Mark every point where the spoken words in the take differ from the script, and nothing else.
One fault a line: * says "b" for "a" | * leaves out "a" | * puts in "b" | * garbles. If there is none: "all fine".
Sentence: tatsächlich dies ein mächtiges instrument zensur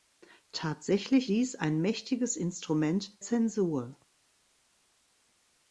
all fine